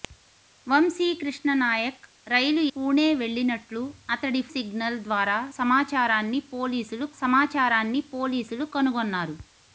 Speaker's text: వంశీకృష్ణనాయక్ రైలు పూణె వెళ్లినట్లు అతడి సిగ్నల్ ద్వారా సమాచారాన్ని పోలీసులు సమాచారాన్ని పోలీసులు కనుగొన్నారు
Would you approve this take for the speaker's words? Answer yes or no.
yes